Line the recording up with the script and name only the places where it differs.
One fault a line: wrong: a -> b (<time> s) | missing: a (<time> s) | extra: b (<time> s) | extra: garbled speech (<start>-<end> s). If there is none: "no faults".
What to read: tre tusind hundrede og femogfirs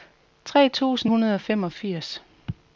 no faults